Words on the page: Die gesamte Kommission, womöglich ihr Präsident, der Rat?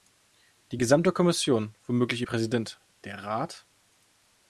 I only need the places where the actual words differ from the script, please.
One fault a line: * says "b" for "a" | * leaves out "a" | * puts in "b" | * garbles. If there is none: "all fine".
all fine